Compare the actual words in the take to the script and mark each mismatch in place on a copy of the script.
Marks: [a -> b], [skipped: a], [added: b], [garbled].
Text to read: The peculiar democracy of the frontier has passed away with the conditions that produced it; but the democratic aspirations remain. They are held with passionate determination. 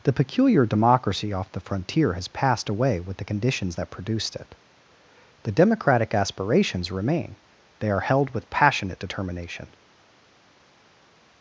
The peculiar democracy [of -> off] the frontier has passed away with the conditions that produced it; [skipped: but] the democratic aspirations remain. They are held with passionate determination.